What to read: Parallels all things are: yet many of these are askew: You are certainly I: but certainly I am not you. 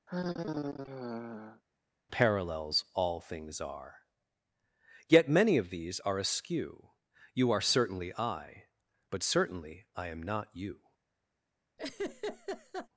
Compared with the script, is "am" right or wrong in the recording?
right